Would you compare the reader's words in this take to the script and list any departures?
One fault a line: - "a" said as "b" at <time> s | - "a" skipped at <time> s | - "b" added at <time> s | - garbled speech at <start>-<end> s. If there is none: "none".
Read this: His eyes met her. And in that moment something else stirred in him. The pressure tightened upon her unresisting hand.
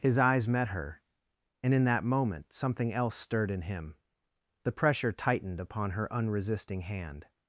none